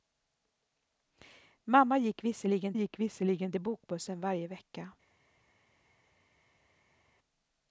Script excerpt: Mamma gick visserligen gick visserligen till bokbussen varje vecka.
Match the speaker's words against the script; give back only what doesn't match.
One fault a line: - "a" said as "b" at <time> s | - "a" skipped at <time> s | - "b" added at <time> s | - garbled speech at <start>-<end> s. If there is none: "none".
none